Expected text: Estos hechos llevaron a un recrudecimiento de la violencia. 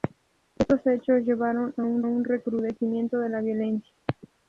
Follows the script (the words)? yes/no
no